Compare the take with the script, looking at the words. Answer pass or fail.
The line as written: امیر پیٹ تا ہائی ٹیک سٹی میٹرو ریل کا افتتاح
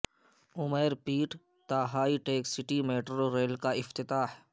pass